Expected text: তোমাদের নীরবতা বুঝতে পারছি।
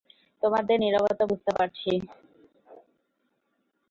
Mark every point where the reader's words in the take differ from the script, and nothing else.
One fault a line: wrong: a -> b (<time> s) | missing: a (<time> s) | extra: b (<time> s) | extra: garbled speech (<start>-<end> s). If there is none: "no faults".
no faults